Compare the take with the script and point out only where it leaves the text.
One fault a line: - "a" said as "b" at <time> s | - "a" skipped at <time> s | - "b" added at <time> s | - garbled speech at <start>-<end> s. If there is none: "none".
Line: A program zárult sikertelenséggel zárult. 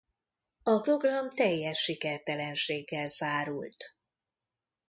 - "zárult" said as "teljes" at 1.3 s